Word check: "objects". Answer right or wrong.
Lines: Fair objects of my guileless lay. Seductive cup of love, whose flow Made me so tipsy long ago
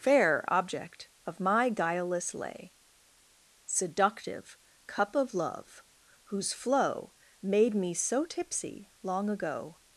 wrong